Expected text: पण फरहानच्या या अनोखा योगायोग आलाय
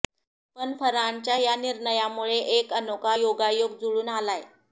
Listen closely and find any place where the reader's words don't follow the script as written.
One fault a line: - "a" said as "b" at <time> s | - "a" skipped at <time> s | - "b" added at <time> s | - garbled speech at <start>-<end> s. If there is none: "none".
- "निर्णयामुळे एक" added at 1.6 s
- "जुळून" added at 3.8 s